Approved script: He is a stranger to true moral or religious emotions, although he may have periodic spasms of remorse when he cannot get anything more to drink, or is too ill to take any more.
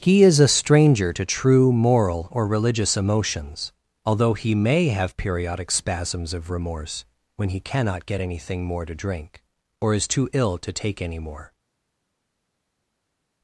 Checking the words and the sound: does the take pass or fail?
pass